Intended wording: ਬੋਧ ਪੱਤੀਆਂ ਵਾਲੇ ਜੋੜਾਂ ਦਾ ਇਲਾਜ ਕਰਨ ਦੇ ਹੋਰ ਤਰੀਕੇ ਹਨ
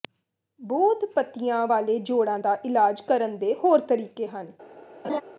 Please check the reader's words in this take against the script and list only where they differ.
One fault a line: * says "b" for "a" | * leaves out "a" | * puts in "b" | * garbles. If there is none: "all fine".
all fine